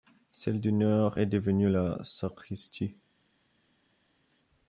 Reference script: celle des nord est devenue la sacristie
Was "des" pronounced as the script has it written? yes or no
no